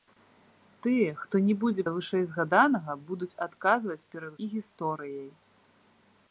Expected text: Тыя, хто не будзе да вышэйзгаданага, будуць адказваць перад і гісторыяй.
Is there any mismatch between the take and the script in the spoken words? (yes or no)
no